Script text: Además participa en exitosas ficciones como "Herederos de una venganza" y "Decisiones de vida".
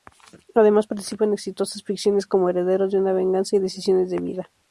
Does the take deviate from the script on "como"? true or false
false